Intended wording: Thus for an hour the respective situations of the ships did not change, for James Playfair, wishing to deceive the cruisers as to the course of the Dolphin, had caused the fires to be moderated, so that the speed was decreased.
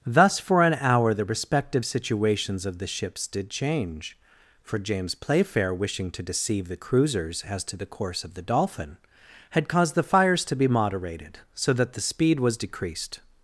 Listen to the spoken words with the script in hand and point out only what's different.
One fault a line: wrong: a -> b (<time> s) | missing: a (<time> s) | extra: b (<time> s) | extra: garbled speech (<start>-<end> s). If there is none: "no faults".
missing: not (3.5 s)